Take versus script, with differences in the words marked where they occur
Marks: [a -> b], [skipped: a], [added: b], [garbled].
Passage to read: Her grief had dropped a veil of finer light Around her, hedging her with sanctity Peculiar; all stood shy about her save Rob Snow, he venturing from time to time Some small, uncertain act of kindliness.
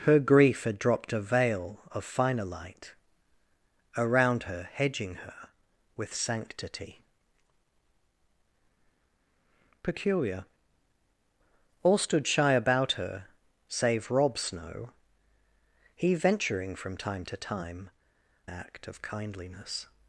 Her grief had dropped a veil of finer light Around her, hedging her with sanctity Peculiar; all stood shy about her save Rob Snow, he venturing from time to time [skipped: Some small, uncertain] act of kindliness.